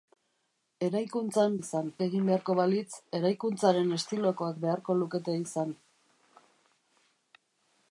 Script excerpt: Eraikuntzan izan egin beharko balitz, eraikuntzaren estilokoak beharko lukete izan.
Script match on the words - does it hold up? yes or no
yes